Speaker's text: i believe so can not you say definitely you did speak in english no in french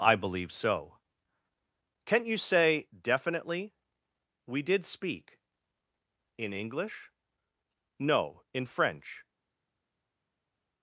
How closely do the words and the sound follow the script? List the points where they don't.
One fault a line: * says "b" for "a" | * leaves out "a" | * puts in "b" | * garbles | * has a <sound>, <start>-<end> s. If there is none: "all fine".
* says "we" for "you"